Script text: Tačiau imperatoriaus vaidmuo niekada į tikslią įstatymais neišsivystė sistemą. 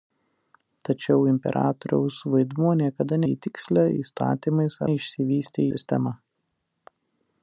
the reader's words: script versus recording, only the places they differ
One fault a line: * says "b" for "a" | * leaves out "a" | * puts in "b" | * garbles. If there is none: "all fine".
all fine